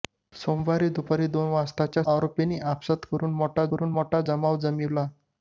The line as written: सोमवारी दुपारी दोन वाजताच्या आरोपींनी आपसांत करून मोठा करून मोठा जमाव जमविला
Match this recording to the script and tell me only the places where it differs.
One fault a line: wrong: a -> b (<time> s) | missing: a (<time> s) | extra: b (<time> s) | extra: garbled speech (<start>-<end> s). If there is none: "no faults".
no faults